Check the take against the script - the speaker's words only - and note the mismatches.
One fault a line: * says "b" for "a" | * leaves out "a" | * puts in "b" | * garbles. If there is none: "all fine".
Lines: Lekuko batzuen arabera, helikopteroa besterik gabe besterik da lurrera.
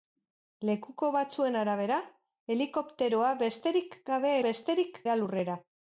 all fine